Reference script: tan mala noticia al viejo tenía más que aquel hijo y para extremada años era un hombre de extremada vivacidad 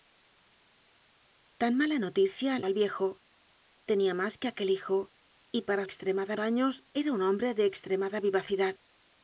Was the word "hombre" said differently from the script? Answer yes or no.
no